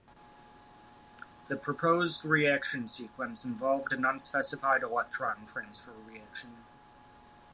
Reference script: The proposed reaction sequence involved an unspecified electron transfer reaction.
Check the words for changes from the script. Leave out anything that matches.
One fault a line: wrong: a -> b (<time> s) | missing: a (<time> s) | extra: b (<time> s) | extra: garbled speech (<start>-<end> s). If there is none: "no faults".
no faults